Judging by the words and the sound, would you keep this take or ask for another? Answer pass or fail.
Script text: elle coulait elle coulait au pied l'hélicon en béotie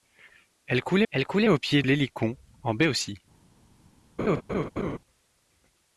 fail